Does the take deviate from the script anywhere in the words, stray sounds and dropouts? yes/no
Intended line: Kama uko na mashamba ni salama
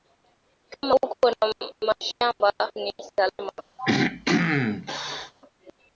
yes